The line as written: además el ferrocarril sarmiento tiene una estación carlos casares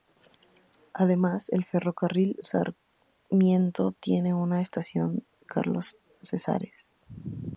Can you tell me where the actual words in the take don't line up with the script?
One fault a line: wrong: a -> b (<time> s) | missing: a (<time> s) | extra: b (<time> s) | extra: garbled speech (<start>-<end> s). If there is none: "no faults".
no faults